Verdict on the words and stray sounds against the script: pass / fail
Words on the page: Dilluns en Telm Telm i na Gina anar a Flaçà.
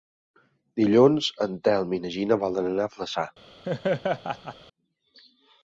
fail